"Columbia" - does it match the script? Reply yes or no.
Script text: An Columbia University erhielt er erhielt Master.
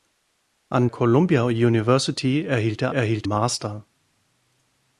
yes